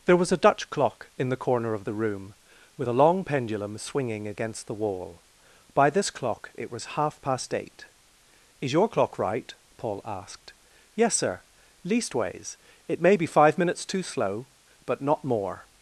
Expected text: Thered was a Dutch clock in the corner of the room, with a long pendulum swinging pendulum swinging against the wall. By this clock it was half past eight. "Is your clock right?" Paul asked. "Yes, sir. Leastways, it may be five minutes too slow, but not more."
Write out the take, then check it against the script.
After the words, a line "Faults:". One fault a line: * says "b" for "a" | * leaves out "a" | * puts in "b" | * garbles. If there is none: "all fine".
There was a Dutch clock in the corner of the room, with a long pendulum swinging against the wall. By this clock it was half past eight. "Is your clock right?" Paul asked. "Yes, sir. Leastways, it may be five minutes too slow, but not more."
Faults:
* says "There" for "Thered"
* leaves out "pendulum swinging"